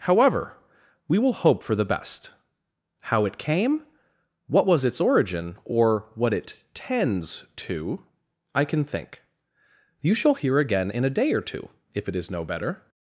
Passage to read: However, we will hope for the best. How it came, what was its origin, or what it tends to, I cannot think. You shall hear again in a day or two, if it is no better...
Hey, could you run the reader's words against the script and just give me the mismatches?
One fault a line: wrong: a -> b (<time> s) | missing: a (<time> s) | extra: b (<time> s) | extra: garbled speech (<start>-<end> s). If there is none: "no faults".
wrong: cannot -> can (8.6 s)